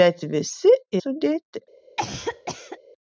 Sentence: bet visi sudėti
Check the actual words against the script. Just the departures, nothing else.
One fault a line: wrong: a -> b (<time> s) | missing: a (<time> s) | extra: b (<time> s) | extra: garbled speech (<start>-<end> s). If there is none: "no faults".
no faults